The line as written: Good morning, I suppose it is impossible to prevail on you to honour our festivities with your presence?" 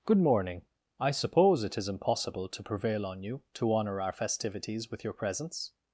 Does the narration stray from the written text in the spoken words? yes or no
no